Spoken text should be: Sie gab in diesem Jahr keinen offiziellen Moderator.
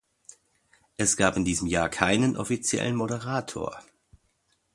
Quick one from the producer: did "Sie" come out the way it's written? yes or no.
no